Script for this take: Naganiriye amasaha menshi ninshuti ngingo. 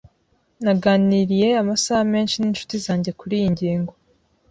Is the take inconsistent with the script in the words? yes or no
yes